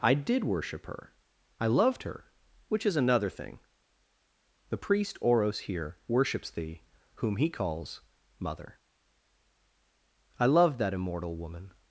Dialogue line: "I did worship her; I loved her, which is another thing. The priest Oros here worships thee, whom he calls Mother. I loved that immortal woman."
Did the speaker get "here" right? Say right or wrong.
right